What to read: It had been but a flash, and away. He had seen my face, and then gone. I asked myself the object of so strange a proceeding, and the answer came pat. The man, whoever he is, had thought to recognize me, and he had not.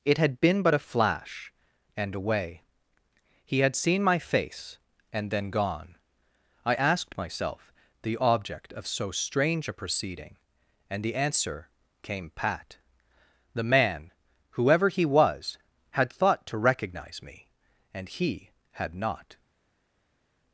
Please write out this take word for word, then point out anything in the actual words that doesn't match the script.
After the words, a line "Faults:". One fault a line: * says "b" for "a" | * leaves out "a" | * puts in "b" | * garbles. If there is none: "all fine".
It had been but a flash, and away. He had seen my face, and then gone. I asked myself the object of so strange a proceeding, and the answer came pat. The man, whoever he was, had thought to recognize me, and he had not.
Faults:
* says "was" for "is"